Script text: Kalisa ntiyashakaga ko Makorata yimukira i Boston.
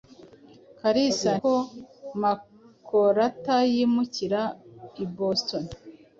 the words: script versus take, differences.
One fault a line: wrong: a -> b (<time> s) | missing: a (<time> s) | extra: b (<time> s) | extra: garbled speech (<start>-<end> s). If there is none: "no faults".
missing: ntiyashakaga (1.3 s)